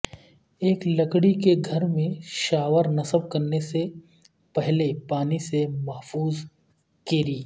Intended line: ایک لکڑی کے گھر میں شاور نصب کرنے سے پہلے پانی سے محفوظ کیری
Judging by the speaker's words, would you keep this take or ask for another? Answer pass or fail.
pass